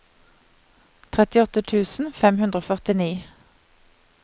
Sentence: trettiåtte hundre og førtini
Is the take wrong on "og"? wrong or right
right